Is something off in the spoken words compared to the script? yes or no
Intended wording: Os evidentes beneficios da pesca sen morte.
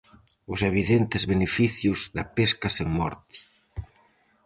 no